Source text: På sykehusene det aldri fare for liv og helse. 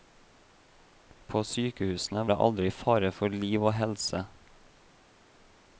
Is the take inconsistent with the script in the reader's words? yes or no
no